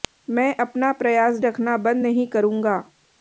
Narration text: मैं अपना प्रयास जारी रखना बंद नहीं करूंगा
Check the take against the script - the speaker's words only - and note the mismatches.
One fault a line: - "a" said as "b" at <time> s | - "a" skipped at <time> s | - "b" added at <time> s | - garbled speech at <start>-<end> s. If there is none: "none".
- "जारी" skipped at 1.4 s